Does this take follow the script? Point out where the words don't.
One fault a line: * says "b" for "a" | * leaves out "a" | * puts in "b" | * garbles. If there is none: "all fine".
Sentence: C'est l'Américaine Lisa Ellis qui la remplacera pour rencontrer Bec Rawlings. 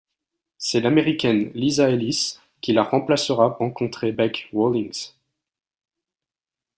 * leaves out "pour"